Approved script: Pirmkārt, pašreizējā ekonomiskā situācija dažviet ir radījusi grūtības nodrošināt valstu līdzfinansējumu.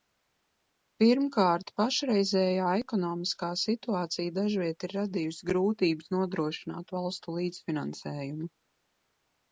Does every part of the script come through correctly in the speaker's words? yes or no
yes